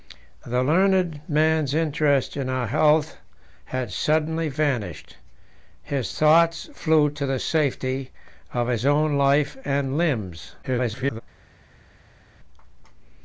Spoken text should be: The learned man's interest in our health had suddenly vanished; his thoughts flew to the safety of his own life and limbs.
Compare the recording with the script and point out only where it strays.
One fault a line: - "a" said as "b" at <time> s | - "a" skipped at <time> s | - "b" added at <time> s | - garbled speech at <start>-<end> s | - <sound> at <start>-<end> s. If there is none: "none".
- garbled speech at 10.6-11.2 s